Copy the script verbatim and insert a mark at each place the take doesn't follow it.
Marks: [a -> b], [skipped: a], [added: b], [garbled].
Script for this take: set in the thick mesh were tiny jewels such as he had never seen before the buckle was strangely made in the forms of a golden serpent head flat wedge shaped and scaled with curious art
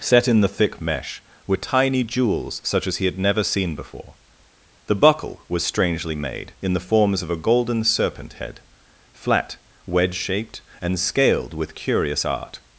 set in the thick mesh were tiny jewels such as he had never seen before the buckle was strangely made in the forms of a golden serpent head flat wedge shaped and scaled with curious art